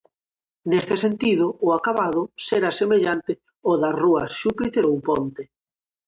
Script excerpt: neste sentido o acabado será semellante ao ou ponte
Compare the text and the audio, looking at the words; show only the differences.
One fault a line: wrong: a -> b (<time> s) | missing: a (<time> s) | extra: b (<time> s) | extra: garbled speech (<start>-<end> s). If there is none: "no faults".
extra: das rúas xúpiter (3.8 s)